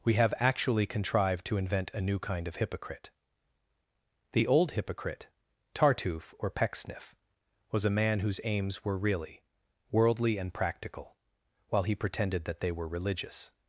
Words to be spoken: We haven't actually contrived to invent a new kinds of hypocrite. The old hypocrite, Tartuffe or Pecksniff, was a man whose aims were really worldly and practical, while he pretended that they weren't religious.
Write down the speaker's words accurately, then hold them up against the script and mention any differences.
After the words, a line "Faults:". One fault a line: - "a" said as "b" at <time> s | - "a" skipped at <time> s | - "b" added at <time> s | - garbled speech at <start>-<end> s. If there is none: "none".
We have actually contrived to invent a new kind of hypocrite. The old hypocrite, Tartuffe or Pecksniff, was a man whose aims were really worldly and practical, while he pretended that they were religious.
Faults:
- "haven't" said as "have" at 0.1 s
- "kinds" said as "kind" at 2.2 s
- "weren't" said as "were" at 12.7 s